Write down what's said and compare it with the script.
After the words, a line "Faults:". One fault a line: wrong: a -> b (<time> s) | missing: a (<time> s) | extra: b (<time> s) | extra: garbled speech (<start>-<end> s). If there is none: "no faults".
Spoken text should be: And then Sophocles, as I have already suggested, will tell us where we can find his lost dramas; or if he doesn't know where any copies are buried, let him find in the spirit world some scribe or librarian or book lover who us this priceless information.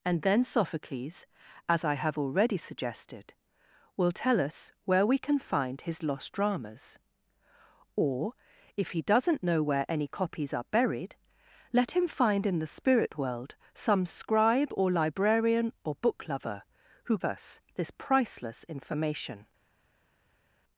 And then Sophocles, as I have already suggested, will tell us where we can find his lost dramas; or if he doesn't know where any copies are buried, let him find in the spirit world some scribe or librarian or book lover who us this priceless information.
Faults:
no faults